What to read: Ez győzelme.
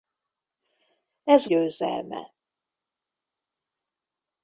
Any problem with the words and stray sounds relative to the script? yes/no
no